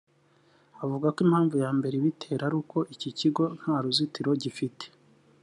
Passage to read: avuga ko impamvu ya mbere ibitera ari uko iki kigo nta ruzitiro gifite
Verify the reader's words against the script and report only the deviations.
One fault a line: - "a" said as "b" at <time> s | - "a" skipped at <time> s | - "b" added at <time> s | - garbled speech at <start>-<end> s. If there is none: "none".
none